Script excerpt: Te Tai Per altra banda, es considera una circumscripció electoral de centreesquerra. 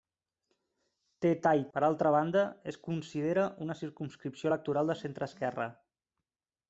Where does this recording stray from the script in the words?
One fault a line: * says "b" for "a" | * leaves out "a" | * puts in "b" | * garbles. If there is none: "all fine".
all fine